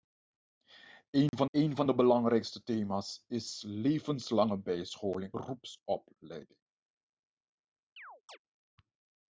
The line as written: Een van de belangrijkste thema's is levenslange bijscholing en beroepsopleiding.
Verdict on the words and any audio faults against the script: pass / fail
fail